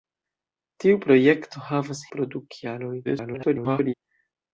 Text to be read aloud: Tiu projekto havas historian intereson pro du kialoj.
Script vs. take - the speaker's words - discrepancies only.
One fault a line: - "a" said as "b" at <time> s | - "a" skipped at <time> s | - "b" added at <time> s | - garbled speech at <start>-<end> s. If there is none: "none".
- "historian intereson" skipped at 2.0 s
- garbled speech at 3.0-3.9 s